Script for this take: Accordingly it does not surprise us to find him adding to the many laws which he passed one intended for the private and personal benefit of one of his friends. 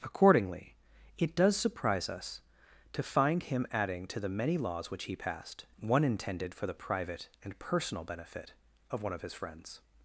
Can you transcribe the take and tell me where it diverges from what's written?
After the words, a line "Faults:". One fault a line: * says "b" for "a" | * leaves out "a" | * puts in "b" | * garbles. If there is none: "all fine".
Accordingly it does surprise us to find him adding to the many laws which he passed one intended for the private and personal benefit of one of his friends.
Faults:
* leaves out "not"